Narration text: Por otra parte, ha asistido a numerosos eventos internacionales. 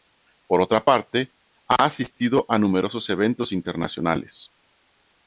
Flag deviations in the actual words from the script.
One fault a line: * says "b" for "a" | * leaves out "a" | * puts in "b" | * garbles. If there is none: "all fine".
all fine